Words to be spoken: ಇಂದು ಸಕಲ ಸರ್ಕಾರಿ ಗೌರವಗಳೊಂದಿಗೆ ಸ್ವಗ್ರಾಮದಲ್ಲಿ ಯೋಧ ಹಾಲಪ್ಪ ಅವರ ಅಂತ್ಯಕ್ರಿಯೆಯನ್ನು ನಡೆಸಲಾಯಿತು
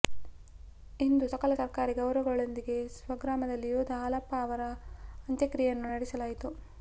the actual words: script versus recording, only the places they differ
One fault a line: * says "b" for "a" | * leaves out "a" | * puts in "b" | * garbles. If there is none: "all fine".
all fine